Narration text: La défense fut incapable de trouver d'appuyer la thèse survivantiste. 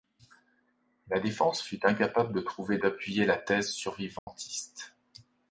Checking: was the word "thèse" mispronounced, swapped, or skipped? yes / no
no